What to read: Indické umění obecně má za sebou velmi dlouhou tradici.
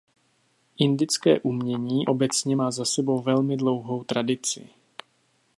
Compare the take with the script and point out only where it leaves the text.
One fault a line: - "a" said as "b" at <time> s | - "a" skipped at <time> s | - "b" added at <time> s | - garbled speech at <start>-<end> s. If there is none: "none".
none